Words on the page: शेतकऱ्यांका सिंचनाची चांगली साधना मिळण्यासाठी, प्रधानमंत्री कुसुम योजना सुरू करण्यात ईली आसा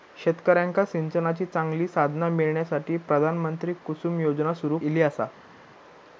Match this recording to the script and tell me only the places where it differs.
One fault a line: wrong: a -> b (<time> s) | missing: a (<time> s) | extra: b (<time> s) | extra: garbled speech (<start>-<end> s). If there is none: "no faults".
missing: करण्यात (4.8 s)